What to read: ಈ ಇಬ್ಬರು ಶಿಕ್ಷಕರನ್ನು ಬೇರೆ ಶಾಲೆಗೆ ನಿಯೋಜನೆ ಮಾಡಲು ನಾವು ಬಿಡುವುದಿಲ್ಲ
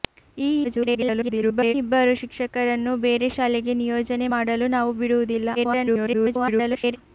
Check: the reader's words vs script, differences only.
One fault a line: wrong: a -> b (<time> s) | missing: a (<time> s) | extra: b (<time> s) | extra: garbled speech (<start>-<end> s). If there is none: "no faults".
extra: garbled speech (0.6-1.7 s)
extra: garbled speech (5.6-7.0 s)